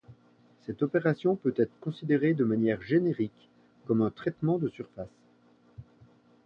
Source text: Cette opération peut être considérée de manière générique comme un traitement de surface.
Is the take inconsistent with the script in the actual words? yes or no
no